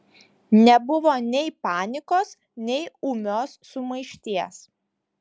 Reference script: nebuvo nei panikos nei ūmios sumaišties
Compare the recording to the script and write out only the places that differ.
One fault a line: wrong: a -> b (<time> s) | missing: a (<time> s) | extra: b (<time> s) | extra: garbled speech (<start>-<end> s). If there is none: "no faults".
no faults